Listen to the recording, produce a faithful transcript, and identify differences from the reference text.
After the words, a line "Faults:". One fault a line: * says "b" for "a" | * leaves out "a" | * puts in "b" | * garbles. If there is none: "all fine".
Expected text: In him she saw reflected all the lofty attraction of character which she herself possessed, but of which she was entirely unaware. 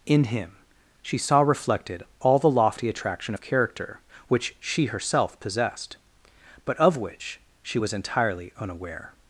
In him she saw reflected all the lofty attraction of character which she herself possessed, but of which she was entirely unaware.
Faults:
all fine